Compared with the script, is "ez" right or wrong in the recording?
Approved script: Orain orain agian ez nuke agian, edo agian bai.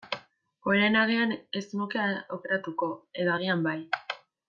right